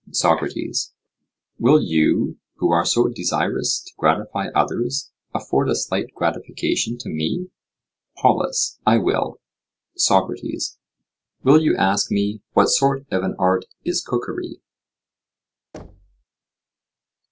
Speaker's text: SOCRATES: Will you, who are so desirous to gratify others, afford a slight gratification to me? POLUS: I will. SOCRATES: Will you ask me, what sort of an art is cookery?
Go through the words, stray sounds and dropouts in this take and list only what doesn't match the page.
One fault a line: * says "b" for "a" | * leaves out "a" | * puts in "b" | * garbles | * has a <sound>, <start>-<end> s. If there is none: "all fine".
* has a thud, 15.7-16.2 s